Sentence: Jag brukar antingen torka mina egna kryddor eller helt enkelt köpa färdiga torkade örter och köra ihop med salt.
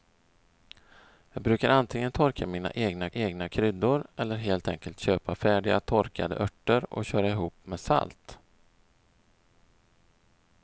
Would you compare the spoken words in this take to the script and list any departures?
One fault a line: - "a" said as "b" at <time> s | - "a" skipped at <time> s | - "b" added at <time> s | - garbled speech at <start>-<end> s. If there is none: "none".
- "egna" added at 3.1 s